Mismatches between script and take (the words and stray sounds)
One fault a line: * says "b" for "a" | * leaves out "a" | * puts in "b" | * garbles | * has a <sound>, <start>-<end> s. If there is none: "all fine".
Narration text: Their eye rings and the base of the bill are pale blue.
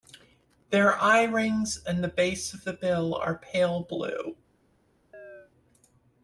* has a chirp, 5.1-5.5 s